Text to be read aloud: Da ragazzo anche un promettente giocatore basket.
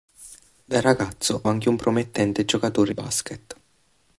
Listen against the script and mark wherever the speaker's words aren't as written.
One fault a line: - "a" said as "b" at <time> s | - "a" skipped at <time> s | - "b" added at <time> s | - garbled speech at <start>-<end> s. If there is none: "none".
none